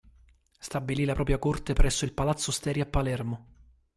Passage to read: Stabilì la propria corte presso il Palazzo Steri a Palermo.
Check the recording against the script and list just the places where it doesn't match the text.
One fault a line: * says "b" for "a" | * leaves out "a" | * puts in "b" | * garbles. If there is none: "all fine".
all fine